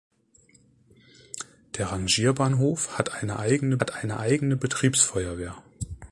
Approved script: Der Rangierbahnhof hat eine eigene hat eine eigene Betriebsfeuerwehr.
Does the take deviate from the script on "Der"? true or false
false